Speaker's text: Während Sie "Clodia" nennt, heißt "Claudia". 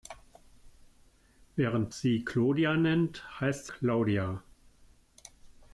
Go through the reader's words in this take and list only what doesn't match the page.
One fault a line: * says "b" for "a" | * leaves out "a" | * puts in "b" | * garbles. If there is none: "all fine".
all fine